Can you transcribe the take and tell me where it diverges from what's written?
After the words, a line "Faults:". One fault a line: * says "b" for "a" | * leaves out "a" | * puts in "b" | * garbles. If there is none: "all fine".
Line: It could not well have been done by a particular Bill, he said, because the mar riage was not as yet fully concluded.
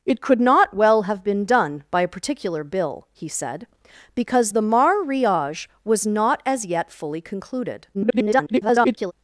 It could not well have been done by a particular Bill, he said, because the mar riage was not as yet fully concluded. [garbled]
Faults:
* garbles